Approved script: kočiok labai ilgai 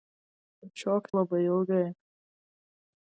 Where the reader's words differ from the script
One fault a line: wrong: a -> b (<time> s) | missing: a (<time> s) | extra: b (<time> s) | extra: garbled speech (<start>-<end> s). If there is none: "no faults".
no faults